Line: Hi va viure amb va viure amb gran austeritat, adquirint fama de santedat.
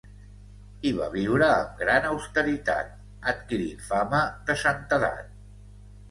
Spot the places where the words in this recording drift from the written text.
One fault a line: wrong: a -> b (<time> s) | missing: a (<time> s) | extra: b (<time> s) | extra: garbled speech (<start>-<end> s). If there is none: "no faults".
missing: va viure amb (1.8 s)